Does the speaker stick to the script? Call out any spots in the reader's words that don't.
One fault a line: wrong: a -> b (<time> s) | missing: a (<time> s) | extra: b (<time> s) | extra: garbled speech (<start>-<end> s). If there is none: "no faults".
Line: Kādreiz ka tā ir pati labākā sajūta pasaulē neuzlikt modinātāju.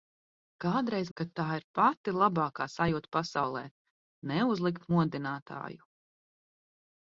no faults